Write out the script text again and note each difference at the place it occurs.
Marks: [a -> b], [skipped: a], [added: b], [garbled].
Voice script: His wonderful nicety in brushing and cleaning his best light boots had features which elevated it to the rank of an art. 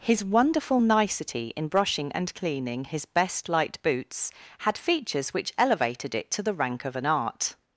His wonderful nicety in brushing and cleaning his best light boots had features which elevated it to the rank of an art.